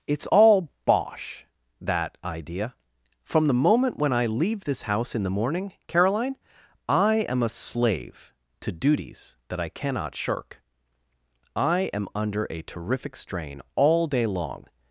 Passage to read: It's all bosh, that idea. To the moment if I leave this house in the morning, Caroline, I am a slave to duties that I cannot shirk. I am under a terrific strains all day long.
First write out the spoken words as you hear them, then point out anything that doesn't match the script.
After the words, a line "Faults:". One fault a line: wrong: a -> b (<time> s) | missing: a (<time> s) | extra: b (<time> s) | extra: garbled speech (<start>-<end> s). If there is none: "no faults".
It's all bosh, that idea. From the moment when I leave this house in the morning, Caroline, I am a slave to duties that I cannot shirk. I am under a terrific strain all day long.
Faults:
wrong: To -> From (3.2 s)
wrong: if -> when (4.0 s)
wrong: strains -> strain (13.2 s)